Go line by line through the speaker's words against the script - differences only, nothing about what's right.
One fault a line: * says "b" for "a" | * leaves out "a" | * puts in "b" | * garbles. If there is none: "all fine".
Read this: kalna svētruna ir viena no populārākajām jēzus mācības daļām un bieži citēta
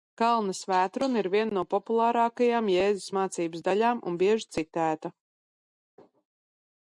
all fine